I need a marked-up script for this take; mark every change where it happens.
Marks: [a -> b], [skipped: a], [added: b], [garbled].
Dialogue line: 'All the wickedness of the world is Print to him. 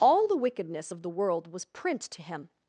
'All the wickedness of the world [is -> was] Print to him.